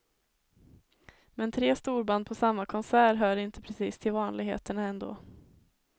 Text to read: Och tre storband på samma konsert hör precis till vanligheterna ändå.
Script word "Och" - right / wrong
wrong